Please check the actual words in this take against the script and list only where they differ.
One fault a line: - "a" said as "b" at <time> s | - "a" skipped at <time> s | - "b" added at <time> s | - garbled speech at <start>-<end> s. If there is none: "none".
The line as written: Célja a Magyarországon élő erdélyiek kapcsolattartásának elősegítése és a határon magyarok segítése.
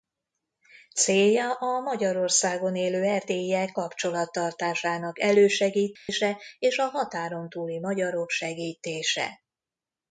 - "túli" added at 7.5 s